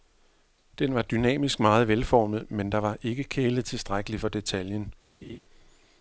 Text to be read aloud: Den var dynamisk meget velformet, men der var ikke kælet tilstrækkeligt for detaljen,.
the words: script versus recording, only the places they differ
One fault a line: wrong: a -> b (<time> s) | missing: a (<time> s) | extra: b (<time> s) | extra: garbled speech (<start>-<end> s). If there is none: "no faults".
no faults